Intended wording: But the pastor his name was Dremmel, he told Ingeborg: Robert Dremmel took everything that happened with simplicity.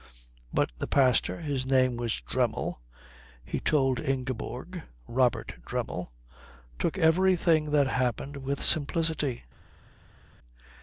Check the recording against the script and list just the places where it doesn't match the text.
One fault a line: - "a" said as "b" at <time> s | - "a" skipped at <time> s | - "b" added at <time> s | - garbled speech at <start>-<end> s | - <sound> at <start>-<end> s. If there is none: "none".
none